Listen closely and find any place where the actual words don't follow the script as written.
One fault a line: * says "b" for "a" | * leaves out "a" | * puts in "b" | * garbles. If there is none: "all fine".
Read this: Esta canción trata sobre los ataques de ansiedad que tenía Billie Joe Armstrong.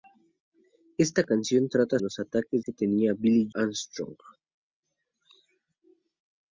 * leaves out "sobre"
* leaves out "de ansiedad"
* leaves out "Joe"